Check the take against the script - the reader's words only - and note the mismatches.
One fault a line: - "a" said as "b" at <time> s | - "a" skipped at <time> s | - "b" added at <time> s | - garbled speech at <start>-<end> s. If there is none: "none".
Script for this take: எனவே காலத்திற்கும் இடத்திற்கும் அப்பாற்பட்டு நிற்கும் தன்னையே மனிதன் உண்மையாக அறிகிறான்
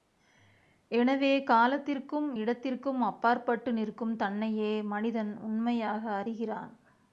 none